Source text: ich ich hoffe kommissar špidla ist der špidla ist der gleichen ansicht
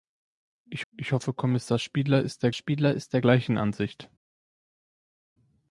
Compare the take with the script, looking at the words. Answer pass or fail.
pass